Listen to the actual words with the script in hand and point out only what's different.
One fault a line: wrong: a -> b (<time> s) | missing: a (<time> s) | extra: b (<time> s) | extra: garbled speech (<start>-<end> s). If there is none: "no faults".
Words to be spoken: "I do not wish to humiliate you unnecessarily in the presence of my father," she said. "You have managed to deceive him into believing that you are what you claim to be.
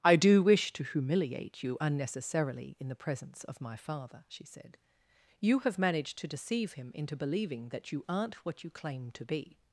missing: not (0.4 s)
wrong: are -> aren't (8.1 s)